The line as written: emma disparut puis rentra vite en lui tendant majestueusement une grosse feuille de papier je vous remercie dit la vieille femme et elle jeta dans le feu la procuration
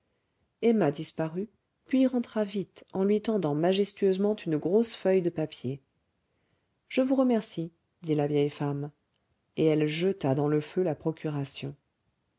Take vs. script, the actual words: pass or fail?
pass